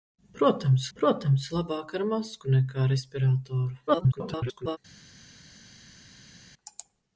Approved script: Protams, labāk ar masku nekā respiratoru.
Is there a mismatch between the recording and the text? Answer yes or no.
yes